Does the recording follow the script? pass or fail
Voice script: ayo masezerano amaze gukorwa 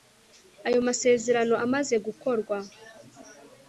pass